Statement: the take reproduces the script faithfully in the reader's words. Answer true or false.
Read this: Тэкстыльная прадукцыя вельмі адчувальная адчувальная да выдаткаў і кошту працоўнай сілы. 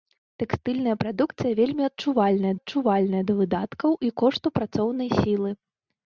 true